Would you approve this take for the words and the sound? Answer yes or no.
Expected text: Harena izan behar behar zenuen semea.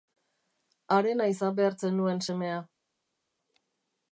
no